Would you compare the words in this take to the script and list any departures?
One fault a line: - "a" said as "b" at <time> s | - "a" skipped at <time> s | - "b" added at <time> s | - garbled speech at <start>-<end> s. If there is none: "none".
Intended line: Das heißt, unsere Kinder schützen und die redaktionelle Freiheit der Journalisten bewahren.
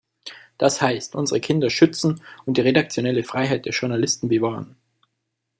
none